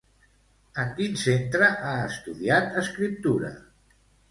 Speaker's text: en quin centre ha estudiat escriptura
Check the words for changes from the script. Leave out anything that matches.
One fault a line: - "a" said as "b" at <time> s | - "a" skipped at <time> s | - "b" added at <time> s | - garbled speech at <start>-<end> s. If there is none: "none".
none